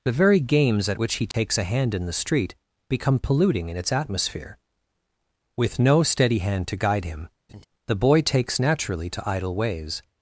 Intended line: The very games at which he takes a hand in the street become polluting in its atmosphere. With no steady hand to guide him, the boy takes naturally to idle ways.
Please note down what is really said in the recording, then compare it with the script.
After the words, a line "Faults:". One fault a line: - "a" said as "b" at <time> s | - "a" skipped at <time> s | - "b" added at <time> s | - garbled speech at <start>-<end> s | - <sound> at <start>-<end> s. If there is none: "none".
The very games at which he takes a hand in the street become polluting in its atmosphere. With no steady hand to guide him, the boy takes naturally to idle ways.
Faults:
- dropout at 1.3-1.3 s
- laugh at 7.5-7.7 s